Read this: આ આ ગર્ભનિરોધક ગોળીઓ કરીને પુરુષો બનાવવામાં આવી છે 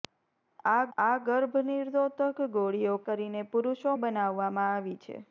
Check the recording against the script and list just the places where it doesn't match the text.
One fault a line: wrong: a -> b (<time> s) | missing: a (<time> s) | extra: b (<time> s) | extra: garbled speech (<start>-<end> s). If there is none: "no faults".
no faults